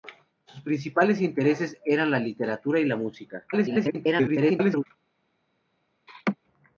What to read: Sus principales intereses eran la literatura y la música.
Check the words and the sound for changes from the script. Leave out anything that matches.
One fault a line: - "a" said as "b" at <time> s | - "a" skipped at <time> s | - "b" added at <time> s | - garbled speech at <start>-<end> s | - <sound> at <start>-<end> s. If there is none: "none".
- garbled speech at 3.5-4.9 s
- laugh at 6.1-6.4 s